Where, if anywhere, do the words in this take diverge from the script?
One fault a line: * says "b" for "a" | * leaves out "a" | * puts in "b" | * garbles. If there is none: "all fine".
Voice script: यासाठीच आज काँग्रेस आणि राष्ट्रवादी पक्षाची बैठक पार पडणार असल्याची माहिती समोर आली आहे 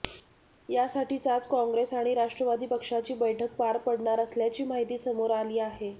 all fine